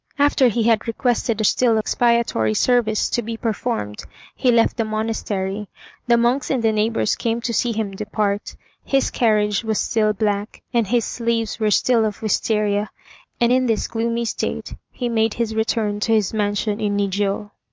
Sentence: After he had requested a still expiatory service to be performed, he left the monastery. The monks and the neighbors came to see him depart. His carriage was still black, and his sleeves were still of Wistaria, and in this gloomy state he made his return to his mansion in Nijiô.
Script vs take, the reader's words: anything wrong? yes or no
no